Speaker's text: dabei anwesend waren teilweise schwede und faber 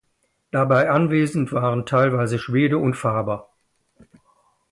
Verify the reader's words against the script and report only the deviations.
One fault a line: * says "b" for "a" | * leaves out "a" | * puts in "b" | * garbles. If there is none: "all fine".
all fine